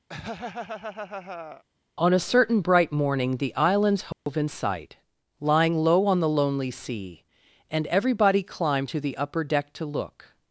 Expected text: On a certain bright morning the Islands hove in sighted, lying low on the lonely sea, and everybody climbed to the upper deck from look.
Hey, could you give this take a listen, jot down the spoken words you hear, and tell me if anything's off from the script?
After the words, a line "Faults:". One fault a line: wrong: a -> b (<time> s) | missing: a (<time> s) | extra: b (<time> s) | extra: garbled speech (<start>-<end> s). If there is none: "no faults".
On a certain bright morning the Islands hove in sight, lying low on the lonely sea, and everybody climbed to the upper deck to look.
Faults:
wrong: sighted -> sight (4.5 s)
wrong: from -> to (9.7 s)